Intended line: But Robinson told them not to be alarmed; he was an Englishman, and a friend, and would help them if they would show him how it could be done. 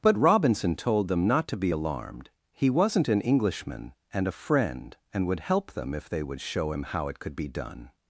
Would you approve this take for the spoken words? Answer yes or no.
no